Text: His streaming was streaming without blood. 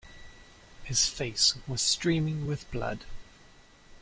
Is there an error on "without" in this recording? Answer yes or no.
yes